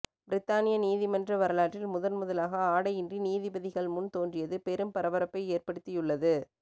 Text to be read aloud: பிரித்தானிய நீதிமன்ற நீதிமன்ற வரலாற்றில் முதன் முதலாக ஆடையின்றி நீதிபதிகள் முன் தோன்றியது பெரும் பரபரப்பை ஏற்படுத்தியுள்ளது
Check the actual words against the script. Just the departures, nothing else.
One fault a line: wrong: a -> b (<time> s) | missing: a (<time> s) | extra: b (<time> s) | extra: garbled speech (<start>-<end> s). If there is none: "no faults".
missing: நீதிமன்ற (1.4 s)